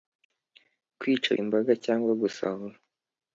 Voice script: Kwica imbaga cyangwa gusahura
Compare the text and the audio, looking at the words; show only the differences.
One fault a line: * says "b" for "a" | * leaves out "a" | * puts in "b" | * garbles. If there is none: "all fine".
all fine